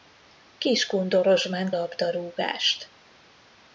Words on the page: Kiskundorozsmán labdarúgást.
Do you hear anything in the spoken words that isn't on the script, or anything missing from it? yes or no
no